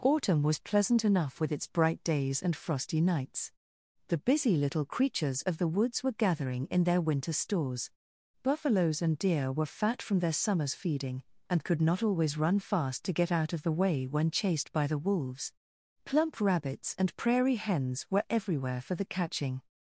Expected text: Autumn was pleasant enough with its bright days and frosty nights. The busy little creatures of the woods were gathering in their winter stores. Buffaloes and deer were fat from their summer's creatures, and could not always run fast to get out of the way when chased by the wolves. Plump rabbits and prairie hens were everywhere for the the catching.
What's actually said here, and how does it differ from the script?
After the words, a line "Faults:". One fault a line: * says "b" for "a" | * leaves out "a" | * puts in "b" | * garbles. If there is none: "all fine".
Autumn was pleasant enough with its bright days and frosty nights. The busy little creatures of the woods were gathering in their winter stores. Buffaloes and deer were fat from their summer's feeding, and could not always run fast to get out of the way when chased by the wolves. Plump rabbits and prairie hens were everywhere for the catching.
Faults:
* says "feeding" for "creatures"
* leaves out "the"